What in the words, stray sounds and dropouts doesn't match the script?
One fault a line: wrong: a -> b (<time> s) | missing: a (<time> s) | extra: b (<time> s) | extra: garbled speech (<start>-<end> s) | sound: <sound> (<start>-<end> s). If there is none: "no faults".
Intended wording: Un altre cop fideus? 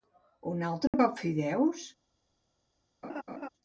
sound: dropout (0.9-0.9 s)
sound: laugh (3.0-3.5 s)